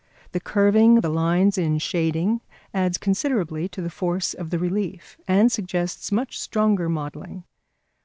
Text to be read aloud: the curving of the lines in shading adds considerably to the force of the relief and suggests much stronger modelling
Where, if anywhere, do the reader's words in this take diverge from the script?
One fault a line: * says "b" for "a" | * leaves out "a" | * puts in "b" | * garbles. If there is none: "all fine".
all fine